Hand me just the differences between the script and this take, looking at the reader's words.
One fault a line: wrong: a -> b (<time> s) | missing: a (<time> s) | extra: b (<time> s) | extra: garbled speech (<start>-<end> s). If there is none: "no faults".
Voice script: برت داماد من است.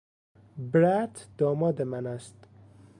no faults